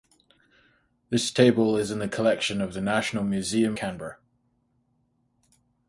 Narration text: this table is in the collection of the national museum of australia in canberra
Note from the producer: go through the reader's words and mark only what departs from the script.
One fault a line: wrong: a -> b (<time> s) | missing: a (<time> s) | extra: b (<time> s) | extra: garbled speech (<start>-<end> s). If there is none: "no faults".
missing: of australia in (3.8 s)